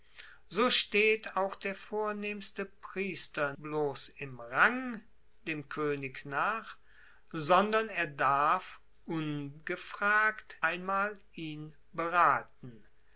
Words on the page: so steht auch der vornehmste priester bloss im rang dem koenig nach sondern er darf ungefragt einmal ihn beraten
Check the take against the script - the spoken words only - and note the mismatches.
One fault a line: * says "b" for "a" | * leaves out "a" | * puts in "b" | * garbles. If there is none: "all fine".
all fine